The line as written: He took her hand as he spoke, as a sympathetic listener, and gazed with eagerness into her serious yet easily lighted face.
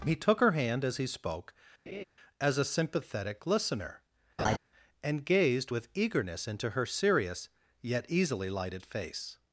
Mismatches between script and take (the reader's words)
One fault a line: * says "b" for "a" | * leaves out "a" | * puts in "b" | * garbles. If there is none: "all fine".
all fine